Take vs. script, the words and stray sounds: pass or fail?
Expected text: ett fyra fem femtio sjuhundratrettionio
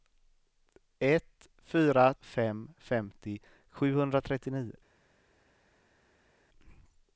pass